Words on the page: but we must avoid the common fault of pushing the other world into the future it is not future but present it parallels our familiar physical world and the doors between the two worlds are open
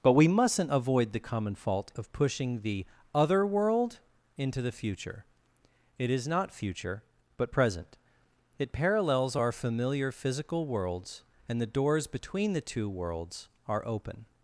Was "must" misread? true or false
true